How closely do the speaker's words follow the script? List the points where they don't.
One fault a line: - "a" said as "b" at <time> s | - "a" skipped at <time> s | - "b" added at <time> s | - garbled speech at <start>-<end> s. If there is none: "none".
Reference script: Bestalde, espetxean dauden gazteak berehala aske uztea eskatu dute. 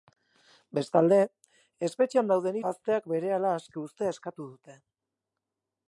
none